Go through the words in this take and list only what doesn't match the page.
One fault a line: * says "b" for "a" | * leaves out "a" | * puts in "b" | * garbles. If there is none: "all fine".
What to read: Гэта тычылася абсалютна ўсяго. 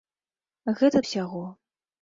* leaves out "тычылася абсалютна"